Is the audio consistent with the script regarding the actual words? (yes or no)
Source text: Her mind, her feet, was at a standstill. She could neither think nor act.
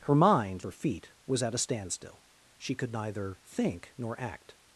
yes